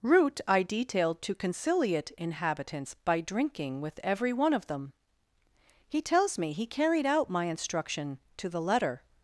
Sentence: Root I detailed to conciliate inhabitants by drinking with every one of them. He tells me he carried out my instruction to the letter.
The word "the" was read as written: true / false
true